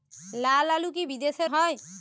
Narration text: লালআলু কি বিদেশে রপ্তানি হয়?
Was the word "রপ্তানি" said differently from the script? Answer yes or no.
yes